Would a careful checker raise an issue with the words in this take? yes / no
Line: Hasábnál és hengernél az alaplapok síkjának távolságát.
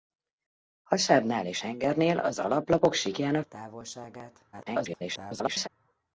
yes